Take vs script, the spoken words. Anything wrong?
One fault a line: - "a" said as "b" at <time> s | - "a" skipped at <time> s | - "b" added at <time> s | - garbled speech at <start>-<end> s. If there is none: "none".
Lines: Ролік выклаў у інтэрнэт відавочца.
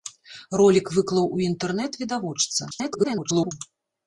- garbled speech at 2.7-3.5 s